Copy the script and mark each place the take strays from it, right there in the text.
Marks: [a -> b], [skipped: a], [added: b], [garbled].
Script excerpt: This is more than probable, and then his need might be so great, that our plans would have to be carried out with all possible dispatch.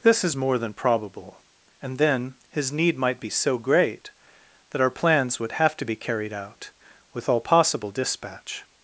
This is more than probable, and then his need might be so great, that our plans would have to be carried out with all possible dispatch.